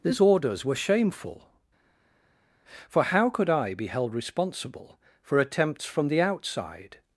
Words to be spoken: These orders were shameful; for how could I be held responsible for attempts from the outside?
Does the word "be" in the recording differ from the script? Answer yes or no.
no